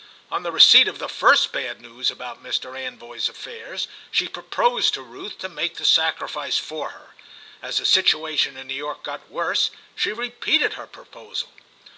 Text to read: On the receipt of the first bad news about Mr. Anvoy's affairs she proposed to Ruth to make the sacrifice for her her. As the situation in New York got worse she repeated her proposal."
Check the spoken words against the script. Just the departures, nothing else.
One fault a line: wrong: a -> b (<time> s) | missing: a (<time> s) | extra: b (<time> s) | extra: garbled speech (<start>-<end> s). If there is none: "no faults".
missing: her (7.1 s)